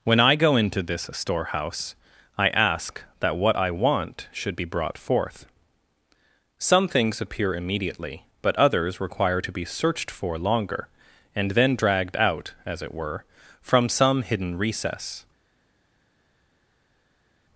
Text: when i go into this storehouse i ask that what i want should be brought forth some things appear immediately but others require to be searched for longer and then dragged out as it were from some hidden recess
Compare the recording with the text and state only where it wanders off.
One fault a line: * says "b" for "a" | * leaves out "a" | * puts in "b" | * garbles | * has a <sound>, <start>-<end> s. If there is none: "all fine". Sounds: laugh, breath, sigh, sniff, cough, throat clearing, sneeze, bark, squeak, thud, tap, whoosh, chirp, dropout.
all fine